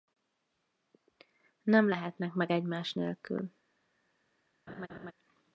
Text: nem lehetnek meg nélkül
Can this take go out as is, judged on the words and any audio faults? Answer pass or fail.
fail